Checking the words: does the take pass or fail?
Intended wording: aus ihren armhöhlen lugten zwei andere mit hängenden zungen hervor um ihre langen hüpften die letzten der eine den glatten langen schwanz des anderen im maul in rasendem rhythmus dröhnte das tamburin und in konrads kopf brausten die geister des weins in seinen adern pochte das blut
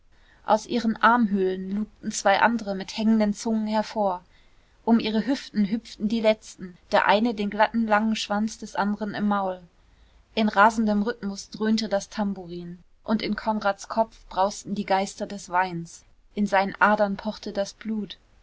fail